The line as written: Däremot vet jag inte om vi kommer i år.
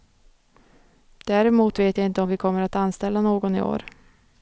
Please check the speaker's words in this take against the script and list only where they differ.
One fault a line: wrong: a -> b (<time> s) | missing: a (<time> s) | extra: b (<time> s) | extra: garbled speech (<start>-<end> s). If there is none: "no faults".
extra: att anställa någon (2.6 s)